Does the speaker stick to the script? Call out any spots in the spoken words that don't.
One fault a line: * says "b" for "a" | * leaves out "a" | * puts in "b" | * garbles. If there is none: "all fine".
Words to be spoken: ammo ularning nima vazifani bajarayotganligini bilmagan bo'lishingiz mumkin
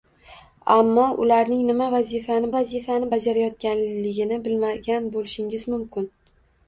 * puts in "vazifani"